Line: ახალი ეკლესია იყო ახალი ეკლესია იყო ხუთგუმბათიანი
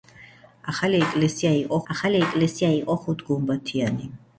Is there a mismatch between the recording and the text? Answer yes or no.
no